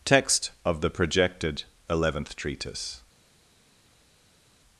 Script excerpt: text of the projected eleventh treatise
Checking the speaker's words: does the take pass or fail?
pass